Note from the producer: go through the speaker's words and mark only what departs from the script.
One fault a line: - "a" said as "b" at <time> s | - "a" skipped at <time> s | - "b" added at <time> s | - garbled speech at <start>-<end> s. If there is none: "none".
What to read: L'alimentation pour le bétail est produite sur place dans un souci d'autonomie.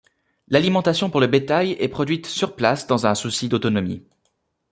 none